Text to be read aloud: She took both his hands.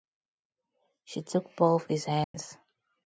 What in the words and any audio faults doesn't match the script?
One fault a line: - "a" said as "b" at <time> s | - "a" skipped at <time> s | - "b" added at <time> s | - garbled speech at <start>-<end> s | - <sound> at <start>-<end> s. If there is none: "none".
- dropout at 2.2-2.3 s